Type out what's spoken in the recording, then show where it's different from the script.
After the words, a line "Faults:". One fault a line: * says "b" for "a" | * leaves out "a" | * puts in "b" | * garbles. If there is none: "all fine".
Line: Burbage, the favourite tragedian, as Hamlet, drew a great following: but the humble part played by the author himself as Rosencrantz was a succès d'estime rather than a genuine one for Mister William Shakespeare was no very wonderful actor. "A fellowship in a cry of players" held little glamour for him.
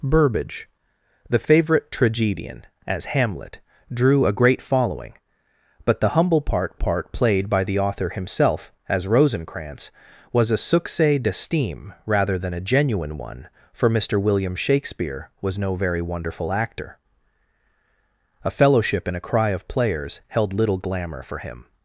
Burbage, the favourite tragedian, as Hamlet, drew a great following: but the humble part part played by the author himself as Rosencrantz was a succès d'estime rather than a genuine one for Mister William Shakespeare was no very wonderful actor. "A fellowship in a cry of players" held little glamour for him.
Faults:
* puts in "part"